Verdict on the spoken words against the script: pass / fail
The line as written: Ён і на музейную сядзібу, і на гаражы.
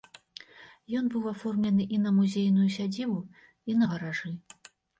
fail